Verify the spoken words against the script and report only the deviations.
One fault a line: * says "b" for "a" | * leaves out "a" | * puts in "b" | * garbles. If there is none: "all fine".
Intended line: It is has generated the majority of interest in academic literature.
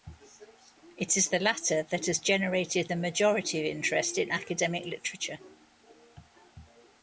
* puts in "the latter that"